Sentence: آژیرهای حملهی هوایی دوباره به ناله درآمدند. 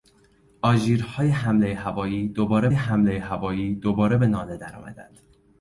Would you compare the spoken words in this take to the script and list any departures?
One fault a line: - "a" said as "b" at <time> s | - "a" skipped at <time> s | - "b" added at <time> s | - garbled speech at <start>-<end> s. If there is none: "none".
- "حملهی هوایی دوباره" added at 2.7 s